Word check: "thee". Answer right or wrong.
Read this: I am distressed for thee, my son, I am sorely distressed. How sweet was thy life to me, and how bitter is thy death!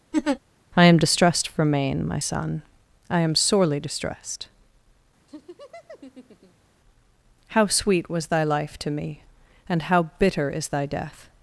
wrong